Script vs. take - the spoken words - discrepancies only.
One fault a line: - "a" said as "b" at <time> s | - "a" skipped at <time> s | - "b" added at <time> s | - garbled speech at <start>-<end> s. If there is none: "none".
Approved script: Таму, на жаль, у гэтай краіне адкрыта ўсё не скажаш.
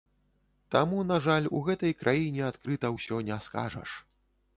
none